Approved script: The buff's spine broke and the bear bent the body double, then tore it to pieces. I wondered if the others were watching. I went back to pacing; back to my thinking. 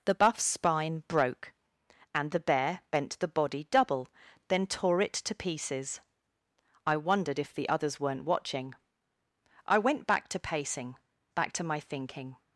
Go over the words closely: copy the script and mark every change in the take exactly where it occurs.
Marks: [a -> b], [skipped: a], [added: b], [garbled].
The buff's spine broke and the bear bent the body double, then tore it to pieces. I wondered if the others [were -> weren't] watching. I went back to pacing; back to my thinking.